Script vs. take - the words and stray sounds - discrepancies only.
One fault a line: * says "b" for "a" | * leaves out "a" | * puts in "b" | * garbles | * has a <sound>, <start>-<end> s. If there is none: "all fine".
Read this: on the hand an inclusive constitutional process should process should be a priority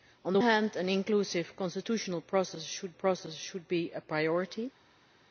all fine